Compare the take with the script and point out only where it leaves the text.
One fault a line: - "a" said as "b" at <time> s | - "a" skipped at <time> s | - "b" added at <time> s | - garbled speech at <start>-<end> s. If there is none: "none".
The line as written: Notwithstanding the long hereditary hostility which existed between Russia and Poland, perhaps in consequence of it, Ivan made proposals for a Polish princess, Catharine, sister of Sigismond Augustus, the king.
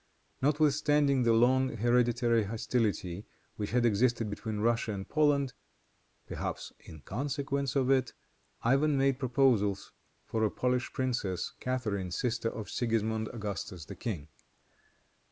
- "had" added at 3.7 s